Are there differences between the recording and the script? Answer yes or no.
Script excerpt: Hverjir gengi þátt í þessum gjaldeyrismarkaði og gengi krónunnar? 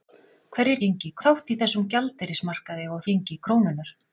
no